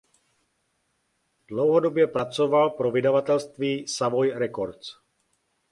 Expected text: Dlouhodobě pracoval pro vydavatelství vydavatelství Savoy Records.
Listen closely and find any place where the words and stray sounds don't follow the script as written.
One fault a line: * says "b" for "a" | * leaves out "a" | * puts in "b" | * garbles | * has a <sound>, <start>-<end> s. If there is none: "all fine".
* leaves out "vydavatelství"